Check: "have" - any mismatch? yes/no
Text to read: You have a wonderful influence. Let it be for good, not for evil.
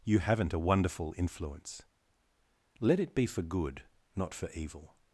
yes